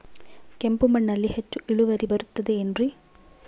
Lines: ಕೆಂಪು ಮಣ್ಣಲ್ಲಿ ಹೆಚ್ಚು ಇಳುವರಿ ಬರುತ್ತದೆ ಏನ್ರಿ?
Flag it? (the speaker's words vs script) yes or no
no